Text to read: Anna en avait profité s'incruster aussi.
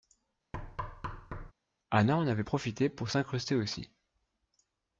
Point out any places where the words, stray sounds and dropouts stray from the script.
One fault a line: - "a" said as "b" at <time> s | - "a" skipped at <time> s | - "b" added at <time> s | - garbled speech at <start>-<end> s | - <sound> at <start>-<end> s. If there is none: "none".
- thud at 0.5-1.5 s
- "pour" added at 2.9 s